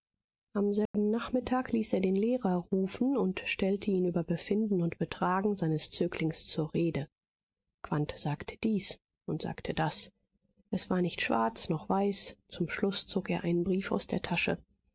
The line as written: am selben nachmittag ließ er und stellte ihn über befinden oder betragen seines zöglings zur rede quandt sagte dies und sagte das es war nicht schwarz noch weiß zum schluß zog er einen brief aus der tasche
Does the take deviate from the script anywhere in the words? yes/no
yes